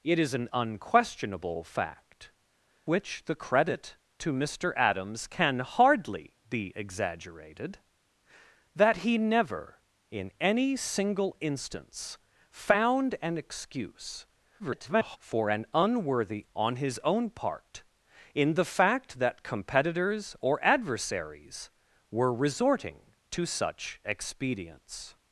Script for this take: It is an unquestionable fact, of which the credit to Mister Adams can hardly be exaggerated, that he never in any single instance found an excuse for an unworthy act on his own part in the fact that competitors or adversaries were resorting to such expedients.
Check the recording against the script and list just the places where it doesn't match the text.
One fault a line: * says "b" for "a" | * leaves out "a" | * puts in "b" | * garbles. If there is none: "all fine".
* leaves out "of"
* garbles
* leaves out "act"